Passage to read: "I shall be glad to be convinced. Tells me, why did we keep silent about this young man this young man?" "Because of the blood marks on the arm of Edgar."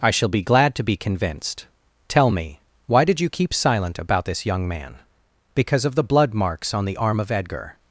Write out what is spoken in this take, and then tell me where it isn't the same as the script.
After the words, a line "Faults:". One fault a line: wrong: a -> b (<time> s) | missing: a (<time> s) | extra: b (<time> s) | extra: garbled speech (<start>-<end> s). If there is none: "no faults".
"I shall be glad to be convinced. Tell me, why did you keep silent about this young man?" "Because of the blood marks on the arm of Edgar."
Faults:
wrong: Tells -> Tell (2.1 s)
wrong: we -> you (3.2 s)
missing: this young man (5.0 s)